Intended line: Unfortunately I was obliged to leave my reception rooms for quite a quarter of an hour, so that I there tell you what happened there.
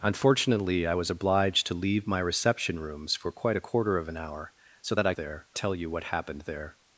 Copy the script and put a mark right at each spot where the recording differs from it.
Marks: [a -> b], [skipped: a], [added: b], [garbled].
Unfortunately I was obliged to leave my reception rooms for quite a quarter of an hour, so that I there tell you what happened there.